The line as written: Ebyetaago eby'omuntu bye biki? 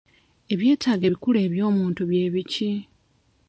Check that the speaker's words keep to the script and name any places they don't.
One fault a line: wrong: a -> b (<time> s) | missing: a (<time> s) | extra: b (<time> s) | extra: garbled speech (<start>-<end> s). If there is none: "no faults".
extra: ebikulu (1.1 s)